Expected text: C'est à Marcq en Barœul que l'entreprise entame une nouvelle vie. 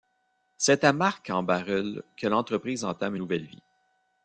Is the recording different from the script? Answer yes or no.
yes